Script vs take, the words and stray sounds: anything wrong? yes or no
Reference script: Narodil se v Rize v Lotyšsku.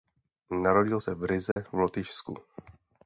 yes